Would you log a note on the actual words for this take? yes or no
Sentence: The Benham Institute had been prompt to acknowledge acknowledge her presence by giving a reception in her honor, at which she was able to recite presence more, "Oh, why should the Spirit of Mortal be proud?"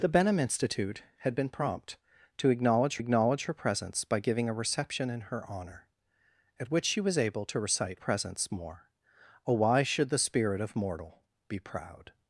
no